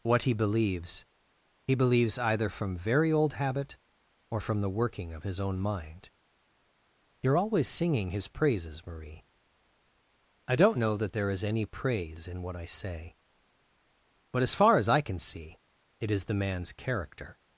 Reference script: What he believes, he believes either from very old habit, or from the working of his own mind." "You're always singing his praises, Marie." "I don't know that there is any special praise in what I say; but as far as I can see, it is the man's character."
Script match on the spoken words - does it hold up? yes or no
no